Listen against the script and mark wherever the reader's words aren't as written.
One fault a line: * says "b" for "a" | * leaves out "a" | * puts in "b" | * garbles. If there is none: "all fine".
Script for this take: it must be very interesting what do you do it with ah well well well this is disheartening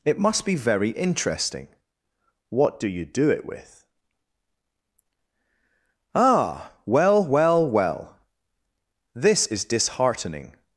all fine